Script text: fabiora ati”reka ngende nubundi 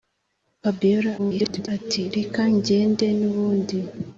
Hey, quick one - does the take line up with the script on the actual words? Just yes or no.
no